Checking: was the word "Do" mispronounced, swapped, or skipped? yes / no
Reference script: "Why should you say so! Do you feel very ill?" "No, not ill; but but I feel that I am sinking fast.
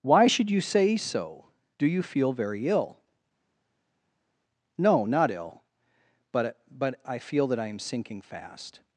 no